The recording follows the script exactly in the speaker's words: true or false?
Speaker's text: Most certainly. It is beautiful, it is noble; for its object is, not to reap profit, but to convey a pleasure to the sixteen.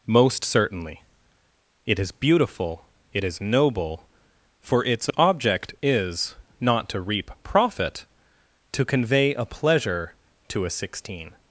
false